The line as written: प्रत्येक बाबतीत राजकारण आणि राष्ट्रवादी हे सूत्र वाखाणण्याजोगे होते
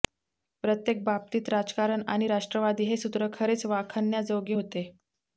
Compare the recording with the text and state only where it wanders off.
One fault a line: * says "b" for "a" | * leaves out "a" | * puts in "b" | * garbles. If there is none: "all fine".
* puts in "खरेच"